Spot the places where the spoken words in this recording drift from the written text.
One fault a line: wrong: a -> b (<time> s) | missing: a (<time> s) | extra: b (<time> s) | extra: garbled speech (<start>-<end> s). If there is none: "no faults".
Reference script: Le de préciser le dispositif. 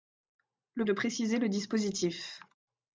no faults